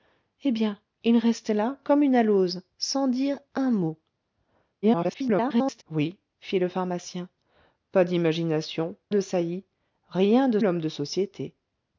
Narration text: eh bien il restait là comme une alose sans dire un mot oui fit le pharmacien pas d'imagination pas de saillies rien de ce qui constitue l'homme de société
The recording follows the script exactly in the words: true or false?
false